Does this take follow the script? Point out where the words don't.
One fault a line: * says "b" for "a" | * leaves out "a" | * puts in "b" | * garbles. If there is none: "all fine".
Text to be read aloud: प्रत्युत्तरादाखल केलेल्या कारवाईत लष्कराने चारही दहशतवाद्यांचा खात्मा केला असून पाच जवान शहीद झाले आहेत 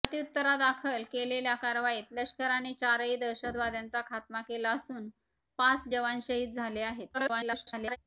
* garbles